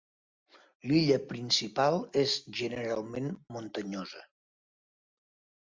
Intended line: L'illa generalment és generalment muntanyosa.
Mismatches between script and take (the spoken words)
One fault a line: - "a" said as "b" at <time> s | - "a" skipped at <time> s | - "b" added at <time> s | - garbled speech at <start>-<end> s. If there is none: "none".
- "generalment" said as "principal" at 1.3 s